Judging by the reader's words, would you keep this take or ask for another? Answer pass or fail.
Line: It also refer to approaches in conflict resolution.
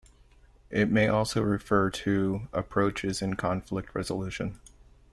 fail